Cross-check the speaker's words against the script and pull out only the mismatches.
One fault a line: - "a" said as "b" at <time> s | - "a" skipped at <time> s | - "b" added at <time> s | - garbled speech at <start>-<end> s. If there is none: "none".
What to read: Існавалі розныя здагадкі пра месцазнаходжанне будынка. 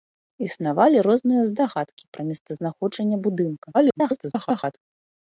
- garbled speech at 3.7-4.8 s